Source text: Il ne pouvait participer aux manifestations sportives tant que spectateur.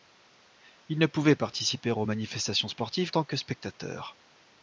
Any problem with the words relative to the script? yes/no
no